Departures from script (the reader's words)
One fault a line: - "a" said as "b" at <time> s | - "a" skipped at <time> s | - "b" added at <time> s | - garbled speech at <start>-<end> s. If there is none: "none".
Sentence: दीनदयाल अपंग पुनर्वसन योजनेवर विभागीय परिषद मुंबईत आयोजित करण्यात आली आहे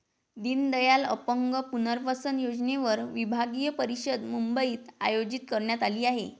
none